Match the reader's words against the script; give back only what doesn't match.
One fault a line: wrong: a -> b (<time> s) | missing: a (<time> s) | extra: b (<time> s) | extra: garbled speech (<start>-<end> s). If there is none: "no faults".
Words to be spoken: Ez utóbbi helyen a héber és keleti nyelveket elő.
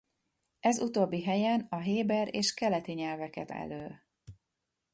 no faults